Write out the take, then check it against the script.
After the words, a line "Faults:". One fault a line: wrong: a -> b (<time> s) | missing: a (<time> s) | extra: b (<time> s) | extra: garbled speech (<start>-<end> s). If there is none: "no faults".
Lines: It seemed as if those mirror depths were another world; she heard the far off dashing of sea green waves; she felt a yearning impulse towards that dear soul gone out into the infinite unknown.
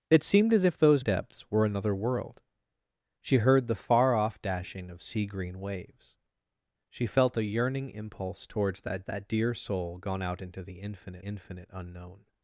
It seemed as if those depths were another world; she heard the far off dashing of sea green waves; she felt a yearning impulse towards that that dear soul gone out into the infinite infinite unknown.
Faults:
missing: mirror (1.1 s)
extra: that (9.0 s)
extra: infinite (11.2 s)